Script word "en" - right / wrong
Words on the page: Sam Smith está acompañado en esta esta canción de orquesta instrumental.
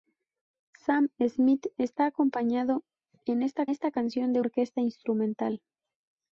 right